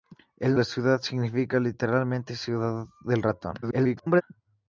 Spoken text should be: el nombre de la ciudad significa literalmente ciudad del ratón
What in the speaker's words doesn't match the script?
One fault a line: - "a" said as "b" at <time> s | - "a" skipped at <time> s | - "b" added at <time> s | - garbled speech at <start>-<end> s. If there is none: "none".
- "nombre de" skipped at 0.6 s
- garbled speech at 3.6-4.2 s